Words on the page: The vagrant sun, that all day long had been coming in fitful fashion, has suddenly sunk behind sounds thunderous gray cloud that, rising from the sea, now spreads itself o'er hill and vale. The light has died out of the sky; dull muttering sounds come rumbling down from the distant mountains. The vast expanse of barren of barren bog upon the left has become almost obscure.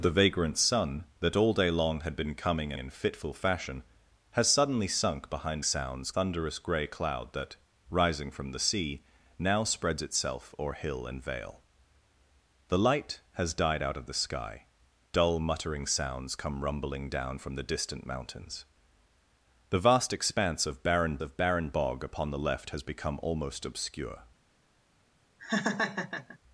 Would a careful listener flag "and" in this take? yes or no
no